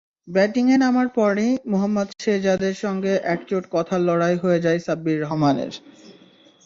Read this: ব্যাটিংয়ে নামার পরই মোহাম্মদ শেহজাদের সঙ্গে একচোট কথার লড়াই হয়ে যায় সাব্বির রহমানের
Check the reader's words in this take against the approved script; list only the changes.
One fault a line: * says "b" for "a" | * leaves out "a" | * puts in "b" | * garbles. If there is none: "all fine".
all fine